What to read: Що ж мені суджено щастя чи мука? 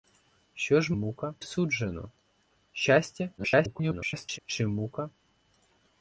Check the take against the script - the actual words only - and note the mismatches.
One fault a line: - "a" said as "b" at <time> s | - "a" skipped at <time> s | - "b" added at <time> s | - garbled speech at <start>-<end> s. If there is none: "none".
- "мені" said as "мука" at 0.9 s
- garbled speech at 3.4-4.4 s